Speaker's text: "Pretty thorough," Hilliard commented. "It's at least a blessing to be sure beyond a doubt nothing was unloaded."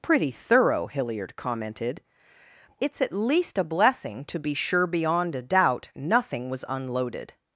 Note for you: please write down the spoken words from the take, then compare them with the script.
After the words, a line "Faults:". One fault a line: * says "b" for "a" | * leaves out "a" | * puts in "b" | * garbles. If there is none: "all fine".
"Pretty thorough," Hilliard commented. "It's at least a blessing to be sure beyond a doubt nothing was unloaded."
Faults:
all fine